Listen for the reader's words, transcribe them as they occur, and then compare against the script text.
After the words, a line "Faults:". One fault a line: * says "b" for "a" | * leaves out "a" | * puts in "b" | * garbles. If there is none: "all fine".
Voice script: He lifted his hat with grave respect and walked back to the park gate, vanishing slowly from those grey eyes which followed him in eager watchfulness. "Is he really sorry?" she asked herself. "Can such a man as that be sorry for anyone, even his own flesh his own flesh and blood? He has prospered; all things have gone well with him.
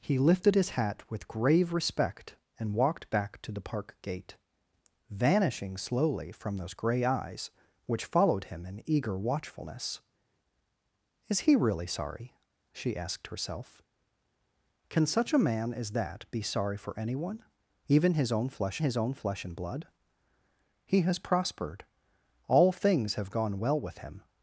He lifted his hat with grave respect and walked back to the park gate, vanishing slowly from those grey eyes which followed him in eager watchfulness. "Is he really sorry?" she asked herself. "Can such a man as that be sorry for anyone, even his own flesh his own flesh and blood? He has prospered; all things have gone well with him.
Faults:
all fine